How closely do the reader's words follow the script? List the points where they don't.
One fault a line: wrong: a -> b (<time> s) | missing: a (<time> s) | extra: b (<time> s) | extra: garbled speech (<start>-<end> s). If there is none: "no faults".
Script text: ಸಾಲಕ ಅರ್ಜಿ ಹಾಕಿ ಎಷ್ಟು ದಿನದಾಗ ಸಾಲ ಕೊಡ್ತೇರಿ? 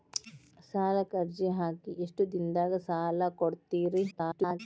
extra: garbled speech (4.1-4.6 s)